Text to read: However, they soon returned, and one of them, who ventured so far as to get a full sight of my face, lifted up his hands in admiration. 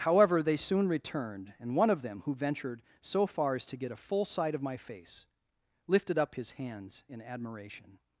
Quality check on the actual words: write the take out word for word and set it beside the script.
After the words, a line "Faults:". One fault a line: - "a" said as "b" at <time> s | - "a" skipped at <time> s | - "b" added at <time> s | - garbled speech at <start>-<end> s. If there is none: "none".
However, they soon returned, and one of them, who ventured so far as to get a full sight of my face, lifted up his hands in admiration.
Faults:
none